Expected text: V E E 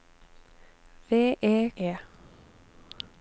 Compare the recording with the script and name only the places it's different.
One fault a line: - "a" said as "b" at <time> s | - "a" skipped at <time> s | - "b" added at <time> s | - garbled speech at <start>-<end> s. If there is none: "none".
none